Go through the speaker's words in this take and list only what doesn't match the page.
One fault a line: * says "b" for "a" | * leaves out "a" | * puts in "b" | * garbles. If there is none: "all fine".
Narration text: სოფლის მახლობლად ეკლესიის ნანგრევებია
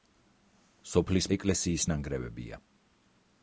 * leaves out "მახლობლად"